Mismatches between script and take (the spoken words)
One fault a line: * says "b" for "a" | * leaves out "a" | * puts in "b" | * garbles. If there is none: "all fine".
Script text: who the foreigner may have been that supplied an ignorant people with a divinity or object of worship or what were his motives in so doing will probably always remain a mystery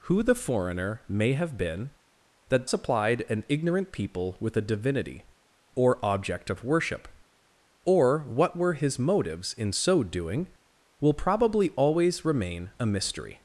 all fine